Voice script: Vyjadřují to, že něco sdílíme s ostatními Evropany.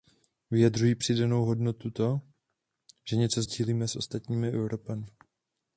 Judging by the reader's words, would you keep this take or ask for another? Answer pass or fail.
fail